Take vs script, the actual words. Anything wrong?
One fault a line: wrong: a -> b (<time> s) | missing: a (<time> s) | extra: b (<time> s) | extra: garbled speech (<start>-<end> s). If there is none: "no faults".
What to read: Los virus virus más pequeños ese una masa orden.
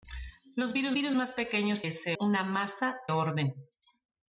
no faults